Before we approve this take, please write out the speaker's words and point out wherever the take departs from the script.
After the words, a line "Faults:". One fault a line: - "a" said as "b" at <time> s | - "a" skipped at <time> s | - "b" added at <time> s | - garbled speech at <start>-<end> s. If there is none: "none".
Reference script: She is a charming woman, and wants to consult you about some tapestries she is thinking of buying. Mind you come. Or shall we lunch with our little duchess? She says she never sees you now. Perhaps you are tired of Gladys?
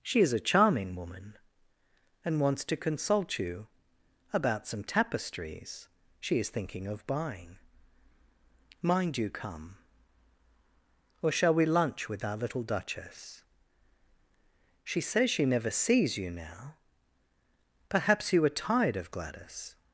She is a charming woman, and wants to consult you about some tapestries she is thinking of buying. Mind you come. Or shall we lunch with our little duchess? She says she never sees you now. Perhaps you are tired of Gladys?
Faults:
none